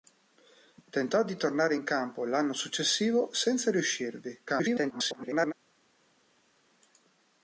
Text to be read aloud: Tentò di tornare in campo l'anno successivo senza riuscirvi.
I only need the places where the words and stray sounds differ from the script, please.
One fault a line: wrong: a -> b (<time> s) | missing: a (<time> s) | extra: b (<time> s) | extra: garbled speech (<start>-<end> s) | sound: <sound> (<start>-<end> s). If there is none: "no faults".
extra: garbled speech (4.5-5.5 s)